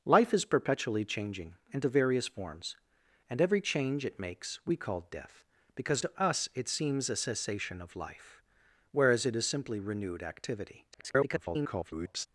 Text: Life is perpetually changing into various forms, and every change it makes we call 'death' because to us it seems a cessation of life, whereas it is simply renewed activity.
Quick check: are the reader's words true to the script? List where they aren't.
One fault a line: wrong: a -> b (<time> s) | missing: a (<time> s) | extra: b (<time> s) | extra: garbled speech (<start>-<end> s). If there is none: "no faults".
extra: garbled speech (10.9-12.3 s)